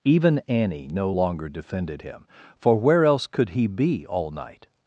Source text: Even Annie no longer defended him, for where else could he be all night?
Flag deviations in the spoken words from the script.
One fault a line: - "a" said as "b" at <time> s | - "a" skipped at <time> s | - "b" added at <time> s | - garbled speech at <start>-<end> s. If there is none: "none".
none